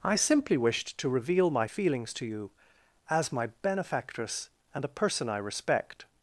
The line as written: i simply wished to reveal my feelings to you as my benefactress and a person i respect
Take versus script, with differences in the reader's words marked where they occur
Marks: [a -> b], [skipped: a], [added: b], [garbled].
i simply wished to reveal my feelings to you as my benefactress and a person i respect